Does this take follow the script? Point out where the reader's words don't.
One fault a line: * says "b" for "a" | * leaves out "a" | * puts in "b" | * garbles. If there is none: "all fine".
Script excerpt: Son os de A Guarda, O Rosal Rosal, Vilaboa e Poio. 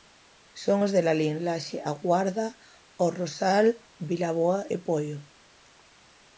* puts in "Lalín Laxe"
* leaves out "Rosal"